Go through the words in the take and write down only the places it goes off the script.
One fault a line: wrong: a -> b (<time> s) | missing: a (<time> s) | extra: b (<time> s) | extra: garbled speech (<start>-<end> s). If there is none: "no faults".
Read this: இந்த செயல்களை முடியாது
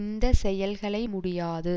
no faults